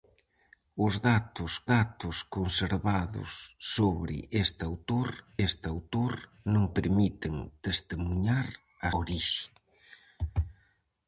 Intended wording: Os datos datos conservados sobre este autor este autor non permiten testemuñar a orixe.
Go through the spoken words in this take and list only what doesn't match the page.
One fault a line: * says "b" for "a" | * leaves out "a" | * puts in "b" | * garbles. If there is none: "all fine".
all fine